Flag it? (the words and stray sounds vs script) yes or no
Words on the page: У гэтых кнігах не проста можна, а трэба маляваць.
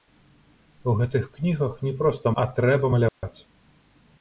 yes